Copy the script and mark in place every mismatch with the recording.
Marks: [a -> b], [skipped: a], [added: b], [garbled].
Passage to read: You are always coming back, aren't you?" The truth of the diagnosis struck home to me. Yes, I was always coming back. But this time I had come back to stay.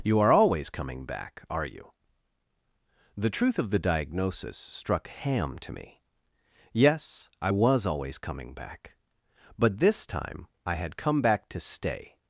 You are always coming back, [aren't -> are] you?" The truth of the diagnosis struck [home -> ham] to me. Yes, I was always coming back. But this time I had come back to stay.